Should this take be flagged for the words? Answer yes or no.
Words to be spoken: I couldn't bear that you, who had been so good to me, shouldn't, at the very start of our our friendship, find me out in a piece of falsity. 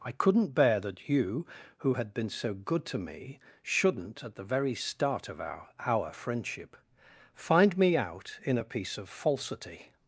no